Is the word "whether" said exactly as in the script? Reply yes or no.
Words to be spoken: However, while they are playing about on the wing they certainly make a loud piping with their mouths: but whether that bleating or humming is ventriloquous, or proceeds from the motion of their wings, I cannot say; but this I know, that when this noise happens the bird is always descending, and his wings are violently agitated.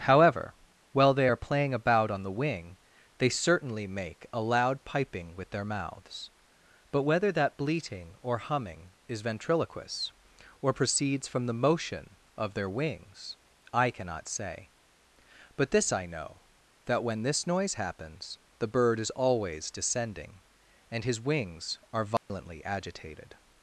yes